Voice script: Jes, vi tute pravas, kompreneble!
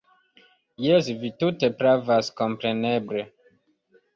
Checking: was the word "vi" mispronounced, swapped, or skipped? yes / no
no